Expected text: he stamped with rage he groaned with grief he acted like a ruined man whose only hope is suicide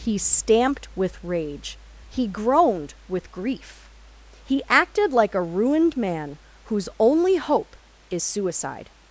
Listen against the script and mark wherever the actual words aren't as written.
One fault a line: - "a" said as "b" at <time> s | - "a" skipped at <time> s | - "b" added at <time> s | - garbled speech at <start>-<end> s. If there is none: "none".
none